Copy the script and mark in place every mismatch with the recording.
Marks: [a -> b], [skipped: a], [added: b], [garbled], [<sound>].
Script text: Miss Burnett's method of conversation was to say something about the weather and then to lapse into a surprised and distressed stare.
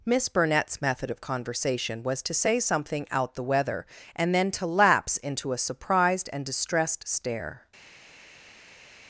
Miss Burnett's method of conversation was to say something [about -> out] the weather and then to lapse into a surprised and distressed stare.